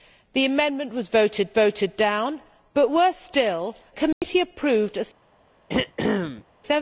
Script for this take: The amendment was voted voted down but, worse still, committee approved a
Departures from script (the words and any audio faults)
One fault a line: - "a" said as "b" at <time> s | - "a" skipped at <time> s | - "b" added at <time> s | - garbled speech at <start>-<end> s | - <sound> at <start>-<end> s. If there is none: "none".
- dropout at 4.1-4.2 s
- throat clearing at 5.7-6.4 s